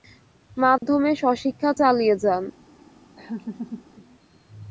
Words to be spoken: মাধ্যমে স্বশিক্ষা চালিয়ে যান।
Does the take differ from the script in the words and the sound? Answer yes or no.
yes